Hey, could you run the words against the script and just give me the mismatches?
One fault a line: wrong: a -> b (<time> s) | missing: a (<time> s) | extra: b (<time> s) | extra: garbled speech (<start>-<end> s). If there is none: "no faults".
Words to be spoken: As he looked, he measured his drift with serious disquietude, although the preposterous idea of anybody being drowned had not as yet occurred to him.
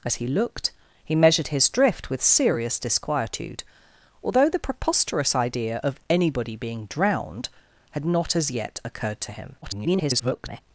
extra: garbled speech (9.6-10.6 s)